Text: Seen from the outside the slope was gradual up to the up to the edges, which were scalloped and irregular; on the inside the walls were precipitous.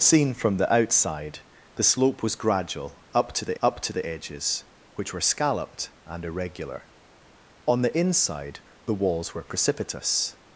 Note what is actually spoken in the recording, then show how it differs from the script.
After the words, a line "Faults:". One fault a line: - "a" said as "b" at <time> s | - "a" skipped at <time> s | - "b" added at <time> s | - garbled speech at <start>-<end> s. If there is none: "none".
Seen from the outside the slope was gradual up to the up to the edges, which were scalloped and irregular; on the inside the walls were precipitous.
Faults:
none